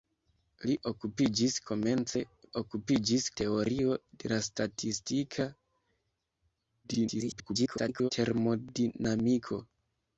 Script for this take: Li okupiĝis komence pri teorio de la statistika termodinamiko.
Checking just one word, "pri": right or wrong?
wrong